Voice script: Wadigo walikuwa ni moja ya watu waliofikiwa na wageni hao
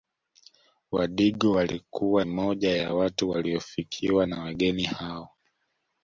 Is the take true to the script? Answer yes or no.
no